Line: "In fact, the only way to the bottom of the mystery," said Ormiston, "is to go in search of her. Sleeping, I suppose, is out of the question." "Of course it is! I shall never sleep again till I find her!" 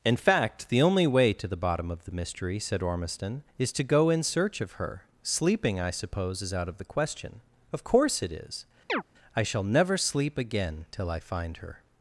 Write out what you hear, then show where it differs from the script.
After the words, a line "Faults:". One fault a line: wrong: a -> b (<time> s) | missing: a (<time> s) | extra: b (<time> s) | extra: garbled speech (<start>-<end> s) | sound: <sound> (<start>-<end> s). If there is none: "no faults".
"In fact, the only way to the bottom of the mystery," said Ormiston, "is to go in search of her. Sleeping, I suppose, is out of the question." "Of course it is! I shall never sleep again till I find her!"
Faults:
sound: chirp (8.9-9.0 s)